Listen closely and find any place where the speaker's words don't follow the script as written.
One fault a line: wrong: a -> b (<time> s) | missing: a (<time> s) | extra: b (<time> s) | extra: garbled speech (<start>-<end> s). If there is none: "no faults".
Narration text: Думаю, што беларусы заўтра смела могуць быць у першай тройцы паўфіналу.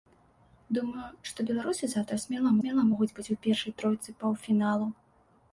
extra: смела (2.6 s)